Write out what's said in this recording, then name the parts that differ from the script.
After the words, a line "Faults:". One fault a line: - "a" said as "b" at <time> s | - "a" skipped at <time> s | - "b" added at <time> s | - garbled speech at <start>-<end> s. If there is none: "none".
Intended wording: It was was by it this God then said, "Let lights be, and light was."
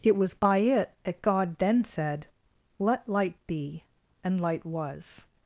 It was by it that God then said, "Let light be, and light was."
Faults:
- "was" skipped at 0.3 s
- "this" said as "that" at 1.0 s
- "lights" said as "light" at 3.1 s